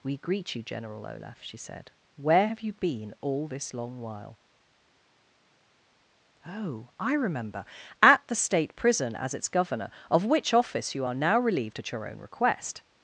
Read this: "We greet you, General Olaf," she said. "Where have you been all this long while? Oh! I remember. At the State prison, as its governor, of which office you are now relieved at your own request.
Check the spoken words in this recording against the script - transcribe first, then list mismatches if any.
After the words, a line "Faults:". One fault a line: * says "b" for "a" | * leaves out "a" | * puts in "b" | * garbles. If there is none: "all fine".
"We greet you, General Olaf," she said. "Where have you been all this long while? Oh! I remember. At the State prison, as its governor, of which office you are now relieved at your own request.
Faults:
all fine